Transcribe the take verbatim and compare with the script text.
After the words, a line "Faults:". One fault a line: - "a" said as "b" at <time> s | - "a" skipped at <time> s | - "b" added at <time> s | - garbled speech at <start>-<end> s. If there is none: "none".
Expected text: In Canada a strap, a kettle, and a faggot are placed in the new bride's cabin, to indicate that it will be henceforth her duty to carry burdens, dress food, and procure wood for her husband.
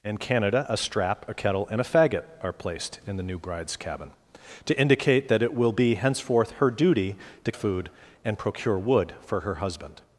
In Canada a strap, a kettle, and a faggot are placed in the new bride's cabin, to indicate that it will be henceforth her duty to food, and procure wood for her husband.
Faults:
- "carry burdens dress" skipped at 7.5 s